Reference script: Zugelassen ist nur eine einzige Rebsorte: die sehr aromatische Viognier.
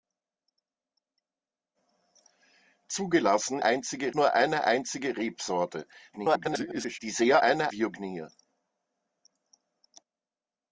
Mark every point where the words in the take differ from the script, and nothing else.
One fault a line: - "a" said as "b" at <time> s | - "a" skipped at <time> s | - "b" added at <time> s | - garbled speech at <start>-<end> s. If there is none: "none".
- "ist" said as "einzige" at 3.6 s
- garbled speech at 6.1-7.0 s
- "aromatische" said as "eine" at 7.4 s